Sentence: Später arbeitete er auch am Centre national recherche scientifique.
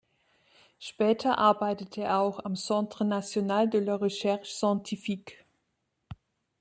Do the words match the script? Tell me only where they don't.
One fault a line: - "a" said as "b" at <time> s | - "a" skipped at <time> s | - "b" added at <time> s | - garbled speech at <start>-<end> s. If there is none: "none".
- "de la" added at 3.7 s